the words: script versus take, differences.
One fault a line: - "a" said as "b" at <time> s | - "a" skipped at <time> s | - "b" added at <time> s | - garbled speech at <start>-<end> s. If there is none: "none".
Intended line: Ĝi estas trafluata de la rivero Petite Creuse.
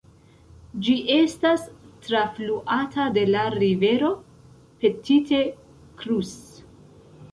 none